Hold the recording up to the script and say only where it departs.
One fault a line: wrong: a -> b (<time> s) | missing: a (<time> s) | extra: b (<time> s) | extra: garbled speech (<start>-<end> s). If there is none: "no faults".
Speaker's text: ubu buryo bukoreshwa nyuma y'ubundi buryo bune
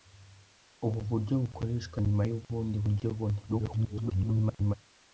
extra: garbled speech (3.5-4.7 s)